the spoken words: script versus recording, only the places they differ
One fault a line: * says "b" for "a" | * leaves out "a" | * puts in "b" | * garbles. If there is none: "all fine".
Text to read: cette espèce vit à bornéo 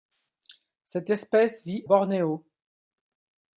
* leaves out "à"